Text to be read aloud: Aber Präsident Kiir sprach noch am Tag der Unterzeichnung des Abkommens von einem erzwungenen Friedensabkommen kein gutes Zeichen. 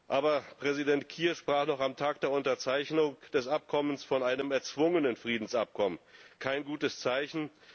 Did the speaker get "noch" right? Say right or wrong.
right